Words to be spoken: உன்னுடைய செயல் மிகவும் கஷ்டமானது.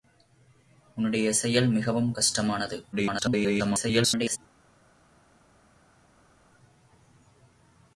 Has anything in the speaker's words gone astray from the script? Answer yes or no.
yes